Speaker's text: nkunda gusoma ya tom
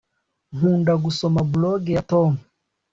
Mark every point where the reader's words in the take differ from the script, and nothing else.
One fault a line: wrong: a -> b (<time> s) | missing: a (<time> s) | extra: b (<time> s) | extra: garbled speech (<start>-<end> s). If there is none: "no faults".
extra: blog (1.5 s)